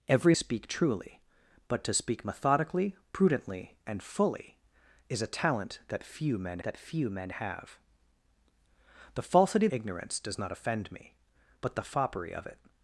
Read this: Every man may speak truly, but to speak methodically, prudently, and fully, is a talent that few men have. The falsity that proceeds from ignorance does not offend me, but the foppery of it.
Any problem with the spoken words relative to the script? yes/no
yes